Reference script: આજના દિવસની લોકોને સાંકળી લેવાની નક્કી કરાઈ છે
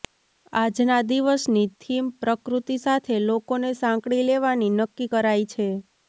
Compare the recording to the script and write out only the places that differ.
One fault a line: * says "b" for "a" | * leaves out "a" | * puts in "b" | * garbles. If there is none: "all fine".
* puts in "થીમ પ્રકૃતિ સાથે"